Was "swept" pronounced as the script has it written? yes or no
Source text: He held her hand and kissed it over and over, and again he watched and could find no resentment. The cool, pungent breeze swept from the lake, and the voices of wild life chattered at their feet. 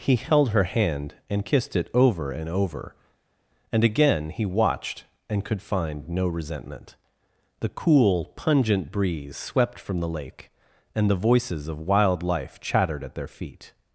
yes